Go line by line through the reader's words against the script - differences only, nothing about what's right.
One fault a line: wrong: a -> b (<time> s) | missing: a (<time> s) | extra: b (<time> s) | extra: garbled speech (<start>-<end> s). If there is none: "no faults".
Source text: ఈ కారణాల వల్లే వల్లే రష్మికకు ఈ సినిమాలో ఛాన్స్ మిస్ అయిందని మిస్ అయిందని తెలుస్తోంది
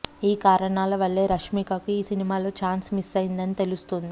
missing: వల్లే (1.2 s)
missing: మిస్ అయిందని (3.6 s)